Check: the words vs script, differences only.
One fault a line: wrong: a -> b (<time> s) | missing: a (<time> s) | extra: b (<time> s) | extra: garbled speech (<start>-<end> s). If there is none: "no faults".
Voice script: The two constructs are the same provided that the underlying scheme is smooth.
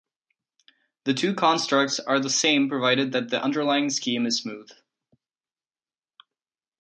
no faults